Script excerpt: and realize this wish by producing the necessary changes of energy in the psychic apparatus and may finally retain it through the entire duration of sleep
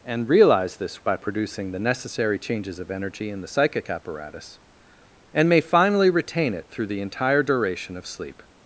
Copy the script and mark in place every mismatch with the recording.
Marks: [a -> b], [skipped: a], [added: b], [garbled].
and realize this [skipped: wish] by producing the necessary changes of energy in the psychic apparatus and may finally retain it through the entire duration of sleep